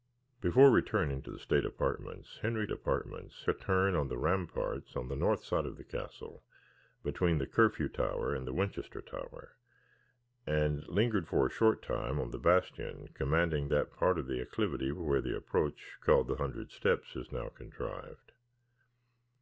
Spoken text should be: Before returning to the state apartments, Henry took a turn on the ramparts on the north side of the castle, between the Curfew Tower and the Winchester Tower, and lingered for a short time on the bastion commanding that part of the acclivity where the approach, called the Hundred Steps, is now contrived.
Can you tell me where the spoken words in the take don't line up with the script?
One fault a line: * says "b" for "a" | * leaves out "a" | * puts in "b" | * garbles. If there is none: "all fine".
* says "apartments" for "took"